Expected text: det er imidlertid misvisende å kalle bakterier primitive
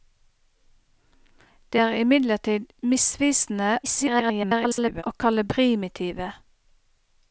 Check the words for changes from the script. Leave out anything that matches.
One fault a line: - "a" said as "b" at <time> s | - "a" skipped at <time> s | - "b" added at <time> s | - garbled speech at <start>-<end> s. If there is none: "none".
- garbled speech at 3.8-5.0 s
- "bakterier" skipped at 5.4 s